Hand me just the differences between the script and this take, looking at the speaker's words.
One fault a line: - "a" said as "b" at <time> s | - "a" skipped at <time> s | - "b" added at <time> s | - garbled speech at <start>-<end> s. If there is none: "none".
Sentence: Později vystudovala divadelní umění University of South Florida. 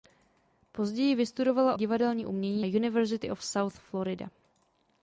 none